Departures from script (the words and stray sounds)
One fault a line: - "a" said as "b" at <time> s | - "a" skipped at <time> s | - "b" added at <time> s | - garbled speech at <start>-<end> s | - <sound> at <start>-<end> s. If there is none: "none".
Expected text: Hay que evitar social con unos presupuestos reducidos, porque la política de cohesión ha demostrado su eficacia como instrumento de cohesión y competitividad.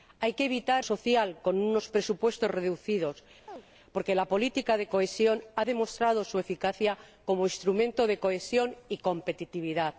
- chirp at 3.5-3.6 s